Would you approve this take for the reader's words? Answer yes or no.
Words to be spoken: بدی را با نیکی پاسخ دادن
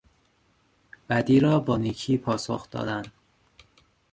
yes